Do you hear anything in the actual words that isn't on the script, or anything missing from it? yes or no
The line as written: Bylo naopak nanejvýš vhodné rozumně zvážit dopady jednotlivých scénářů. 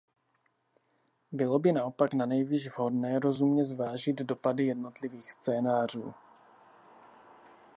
yes